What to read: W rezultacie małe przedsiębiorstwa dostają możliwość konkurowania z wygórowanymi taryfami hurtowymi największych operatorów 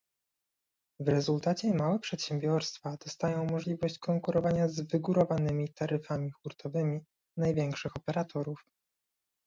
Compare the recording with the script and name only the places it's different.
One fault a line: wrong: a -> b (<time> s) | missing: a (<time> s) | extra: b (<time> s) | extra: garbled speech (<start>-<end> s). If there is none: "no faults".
no faults